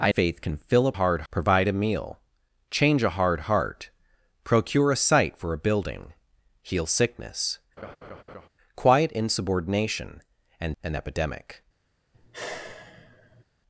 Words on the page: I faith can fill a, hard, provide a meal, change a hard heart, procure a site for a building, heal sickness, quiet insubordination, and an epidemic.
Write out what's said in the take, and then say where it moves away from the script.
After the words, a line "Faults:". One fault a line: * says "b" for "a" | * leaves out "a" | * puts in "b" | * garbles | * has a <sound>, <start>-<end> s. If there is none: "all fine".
I faith can fill a, hard, provide a meal, change a hard heart, procure a site for a building, heal sickness, quiet insubordination, and an epidemic.
Faults:
* has a laugh, 7.8-8.5 s
* has a sigh, 12.1-13.4 s